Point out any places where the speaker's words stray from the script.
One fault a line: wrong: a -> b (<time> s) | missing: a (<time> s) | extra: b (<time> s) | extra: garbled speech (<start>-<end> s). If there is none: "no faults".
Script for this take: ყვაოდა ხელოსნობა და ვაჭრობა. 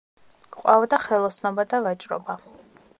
no faults